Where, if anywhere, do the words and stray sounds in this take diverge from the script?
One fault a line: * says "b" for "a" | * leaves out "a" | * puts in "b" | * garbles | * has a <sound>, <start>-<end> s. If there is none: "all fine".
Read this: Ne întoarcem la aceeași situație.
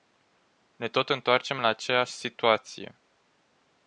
* puts in "tot"